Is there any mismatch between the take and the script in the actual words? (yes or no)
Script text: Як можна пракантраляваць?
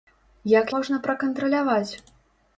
no